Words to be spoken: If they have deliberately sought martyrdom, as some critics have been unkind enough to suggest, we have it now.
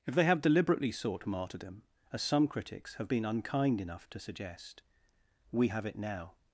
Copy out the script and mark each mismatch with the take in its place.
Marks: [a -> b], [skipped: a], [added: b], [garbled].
If they have deliberately sought martyrdom, as some critics have been unkind enough to suggest, we have it now.